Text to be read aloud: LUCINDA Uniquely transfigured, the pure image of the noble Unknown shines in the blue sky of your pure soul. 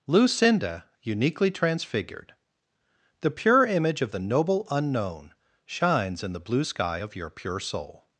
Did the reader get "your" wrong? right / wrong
right